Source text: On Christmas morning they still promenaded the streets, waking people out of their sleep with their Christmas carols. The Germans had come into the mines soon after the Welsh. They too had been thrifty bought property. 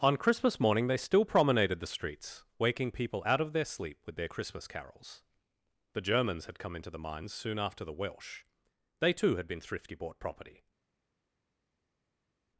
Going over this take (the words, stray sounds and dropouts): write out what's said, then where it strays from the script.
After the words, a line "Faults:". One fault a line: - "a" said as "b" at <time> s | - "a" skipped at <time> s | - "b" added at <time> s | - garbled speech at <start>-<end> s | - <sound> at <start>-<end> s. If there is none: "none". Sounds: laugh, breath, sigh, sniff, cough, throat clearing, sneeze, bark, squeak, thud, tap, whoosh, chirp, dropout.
On Christmas morning they still promenaded the streets, waking people out of their sleep with their Christmas carols. The Germans had come into the mines soon after the Welsh. They too had been thrifty bought property.
Faults:
none